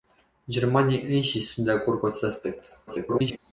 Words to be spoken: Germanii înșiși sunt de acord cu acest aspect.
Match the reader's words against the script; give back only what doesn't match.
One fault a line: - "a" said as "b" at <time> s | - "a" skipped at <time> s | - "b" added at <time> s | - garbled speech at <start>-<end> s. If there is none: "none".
- garbled speech at 2.9-3.4 s